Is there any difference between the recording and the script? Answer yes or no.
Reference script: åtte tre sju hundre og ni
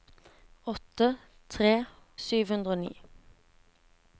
no